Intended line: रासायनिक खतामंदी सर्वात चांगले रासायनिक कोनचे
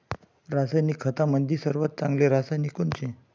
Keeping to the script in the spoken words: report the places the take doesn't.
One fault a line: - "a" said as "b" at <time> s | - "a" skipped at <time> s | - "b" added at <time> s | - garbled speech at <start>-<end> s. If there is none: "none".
none